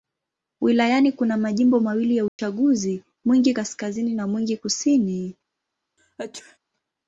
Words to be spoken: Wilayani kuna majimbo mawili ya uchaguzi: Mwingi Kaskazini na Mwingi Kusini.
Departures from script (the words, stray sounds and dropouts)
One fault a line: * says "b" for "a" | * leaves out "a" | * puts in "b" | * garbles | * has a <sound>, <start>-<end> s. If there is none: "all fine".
* has a dropout, 2.3-2.4 s
* has a sneeze, 6.0-6.6 s